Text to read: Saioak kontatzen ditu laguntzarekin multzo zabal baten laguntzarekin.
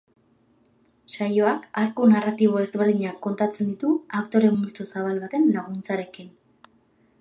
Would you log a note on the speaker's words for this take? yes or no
yes